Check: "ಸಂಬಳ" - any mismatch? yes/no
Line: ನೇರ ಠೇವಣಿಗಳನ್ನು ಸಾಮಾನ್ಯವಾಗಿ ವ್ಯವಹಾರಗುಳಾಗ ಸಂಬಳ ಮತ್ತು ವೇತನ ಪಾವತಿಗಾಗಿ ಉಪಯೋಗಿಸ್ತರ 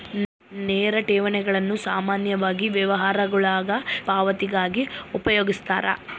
yes